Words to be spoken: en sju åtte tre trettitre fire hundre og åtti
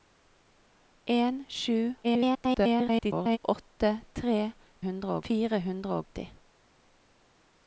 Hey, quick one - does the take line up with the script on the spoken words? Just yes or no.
no